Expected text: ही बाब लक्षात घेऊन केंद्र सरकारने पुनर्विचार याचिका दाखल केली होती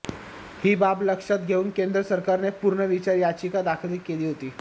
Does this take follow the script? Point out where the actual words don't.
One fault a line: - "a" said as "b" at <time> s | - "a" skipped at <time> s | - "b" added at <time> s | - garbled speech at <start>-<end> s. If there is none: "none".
none